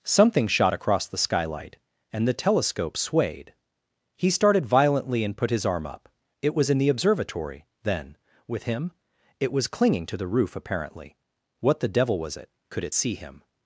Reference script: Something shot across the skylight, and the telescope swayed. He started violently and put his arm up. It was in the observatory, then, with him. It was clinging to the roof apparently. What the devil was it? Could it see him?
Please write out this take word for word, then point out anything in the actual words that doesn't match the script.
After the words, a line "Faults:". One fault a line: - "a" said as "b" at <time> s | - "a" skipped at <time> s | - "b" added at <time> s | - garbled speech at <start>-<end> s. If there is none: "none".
Something shot across the skylight, and the telescope swayed. He started violently and put his arm up. It was in the observatory, then, with him. It was clinging to the roof apparently. What the devil was it? Could it see him?
Faults:
none